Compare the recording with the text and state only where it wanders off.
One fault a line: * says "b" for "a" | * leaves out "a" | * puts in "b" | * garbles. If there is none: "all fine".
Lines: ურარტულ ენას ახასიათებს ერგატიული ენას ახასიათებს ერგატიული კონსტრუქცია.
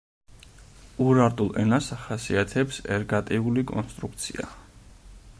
* leaves out "ენას ახასიათებს ერგატიული"